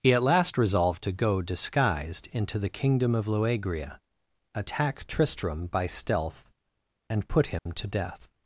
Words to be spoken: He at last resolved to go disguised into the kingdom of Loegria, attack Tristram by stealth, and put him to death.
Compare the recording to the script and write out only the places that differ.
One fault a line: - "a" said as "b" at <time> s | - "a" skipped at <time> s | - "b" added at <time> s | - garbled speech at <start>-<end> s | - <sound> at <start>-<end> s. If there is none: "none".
- dropout at 7.6-7.7 s